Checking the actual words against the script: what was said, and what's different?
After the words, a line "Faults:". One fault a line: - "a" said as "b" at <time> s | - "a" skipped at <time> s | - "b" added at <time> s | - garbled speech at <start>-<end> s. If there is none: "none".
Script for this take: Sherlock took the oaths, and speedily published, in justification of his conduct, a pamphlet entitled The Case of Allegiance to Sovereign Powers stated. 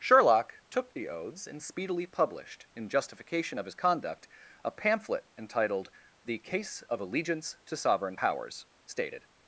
Sherlock took the oaths, and speedily published, in justification of his conduct, a pamphlet entitled The Case of Allegiance to Sovereign Powers stated.
Faults:
none